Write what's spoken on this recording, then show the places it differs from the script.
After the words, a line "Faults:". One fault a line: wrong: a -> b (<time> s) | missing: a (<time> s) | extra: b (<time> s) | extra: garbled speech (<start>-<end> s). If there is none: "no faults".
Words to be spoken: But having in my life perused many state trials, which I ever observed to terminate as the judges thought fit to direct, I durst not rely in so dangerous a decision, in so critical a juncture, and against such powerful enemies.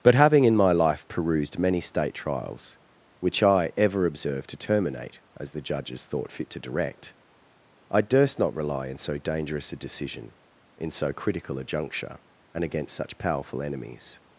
But having in my life perused many state trials, which I ever observed to terminate as the judges thought fit to direct, I durst not rely in so dangerous a decision, in so critical a juncture, and against such powerful enemies.
Faults:
no faults